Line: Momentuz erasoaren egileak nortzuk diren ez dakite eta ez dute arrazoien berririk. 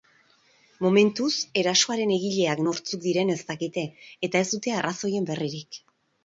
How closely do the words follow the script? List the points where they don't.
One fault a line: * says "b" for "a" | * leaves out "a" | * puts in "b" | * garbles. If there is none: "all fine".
all fine